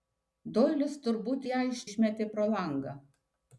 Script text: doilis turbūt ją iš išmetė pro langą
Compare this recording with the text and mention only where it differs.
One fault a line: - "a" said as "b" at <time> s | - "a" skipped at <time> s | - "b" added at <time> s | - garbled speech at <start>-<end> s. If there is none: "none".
none